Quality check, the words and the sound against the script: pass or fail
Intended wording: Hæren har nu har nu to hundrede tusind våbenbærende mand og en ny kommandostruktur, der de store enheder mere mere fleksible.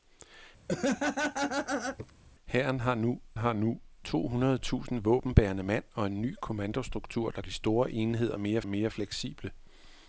fail